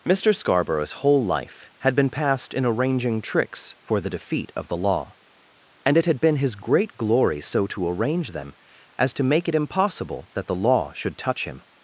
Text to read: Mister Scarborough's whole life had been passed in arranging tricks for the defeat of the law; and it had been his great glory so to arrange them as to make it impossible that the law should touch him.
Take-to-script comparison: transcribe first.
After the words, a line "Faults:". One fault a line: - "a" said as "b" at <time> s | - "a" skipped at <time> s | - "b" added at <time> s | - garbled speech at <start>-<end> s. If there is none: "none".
Mister Scarborough's whole life had been passed in arranging tricks for the defeat of the law; and it had been his great glory so to arrange them as to make it impossible that the law should touch him.
Faults:
none